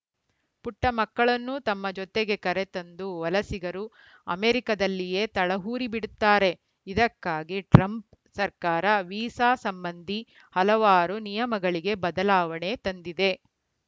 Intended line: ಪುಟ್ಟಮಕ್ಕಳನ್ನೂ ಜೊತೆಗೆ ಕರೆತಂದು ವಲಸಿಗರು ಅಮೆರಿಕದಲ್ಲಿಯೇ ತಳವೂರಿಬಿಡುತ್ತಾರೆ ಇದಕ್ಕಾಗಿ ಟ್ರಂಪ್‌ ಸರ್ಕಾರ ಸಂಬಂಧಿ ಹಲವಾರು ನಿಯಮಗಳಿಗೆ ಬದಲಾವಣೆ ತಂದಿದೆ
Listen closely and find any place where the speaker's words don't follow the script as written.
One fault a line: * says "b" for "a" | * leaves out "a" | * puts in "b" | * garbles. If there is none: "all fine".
* puts in "ತಮ್ಮ"
* puts in "ವೀಸಾ"